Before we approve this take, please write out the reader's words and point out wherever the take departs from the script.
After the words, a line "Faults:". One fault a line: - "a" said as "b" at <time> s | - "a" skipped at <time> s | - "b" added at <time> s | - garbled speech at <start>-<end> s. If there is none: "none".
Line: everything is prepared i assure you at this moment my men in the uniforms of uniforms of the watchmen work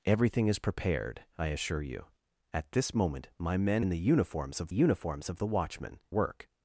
everything is prepared i assure you at this moment my men in the uniforms of uniforms of the watchmen work
Faults:
none